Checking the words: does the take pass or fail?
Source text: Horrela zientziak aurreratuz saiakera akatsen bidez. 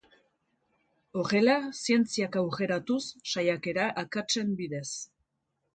pass